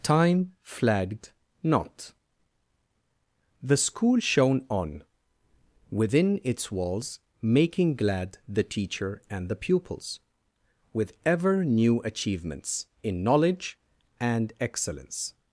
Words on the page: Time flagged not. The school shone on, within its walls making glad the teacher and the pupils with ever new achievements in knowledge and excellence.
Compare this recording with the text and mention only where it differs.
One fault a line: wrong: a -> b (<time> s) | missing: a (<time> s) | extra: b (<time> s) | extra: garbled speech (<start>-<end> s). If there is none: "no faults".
no faults